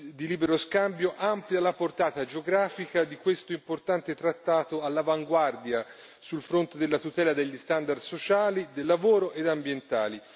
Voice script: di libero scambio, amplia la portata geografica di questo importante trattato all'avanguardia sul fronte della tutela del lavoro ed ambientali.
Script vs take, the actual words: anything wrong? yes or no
yes